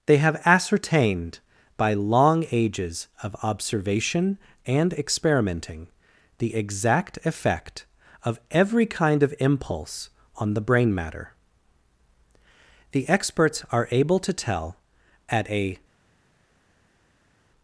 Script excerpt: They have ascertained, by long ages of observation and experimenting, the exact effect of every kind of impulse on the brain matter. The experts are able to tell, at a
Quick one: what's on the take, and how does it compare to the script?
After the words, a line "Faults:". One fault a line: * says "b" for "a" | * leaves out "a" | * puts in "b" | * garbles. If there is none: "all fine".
They have ascertained, by long ages of observation and experimenting, the exact effect of every kind of impulse on the brain matter. The experts are able to tell, at a
Faults:
all fine